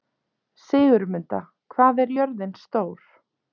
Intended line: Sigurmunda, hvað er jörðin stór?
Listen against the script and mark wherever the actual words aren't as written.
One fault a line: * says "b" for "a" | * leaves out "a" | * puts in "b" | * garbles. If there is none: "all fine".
all fine